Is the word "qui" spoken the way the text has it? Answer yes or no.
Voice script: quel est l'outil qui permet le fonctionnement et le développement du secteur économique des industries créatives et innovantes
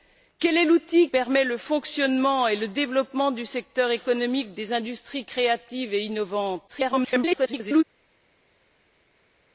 no